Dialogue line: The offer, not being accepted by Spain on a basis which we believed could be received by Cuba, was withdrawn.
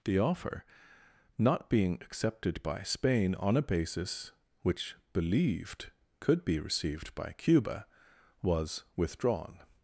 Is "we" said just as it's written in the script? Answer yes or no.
no